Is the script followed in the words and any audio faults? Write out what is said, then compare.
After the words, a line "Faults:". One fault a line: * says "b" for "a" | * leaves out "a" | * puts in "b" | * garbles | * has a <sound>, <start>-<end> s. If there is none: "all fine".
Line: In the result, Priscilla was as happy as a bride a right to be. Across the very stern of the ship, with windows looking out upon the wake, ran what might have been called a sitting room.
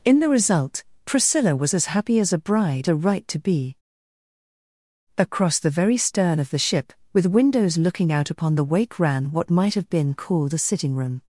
In the result, Priscilla was as happy as a bride a right to be. Across the very stern of the ship, with windows looking out upon the wake, ran what might have been called a sitting room.
Faults:
all fine